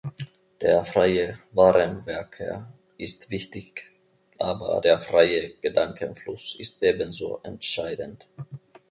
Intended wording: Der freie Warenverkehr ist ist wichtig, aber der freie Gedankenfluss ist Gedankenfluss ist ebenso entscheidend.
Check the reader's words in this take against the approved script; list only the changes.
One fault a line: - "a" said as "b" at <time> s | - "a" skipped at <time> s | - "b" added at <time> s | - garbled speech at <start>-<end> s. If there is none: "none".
- "ist" skipped at 3.3 s
- "Gedankenfluss ist" skipped at 6.8 s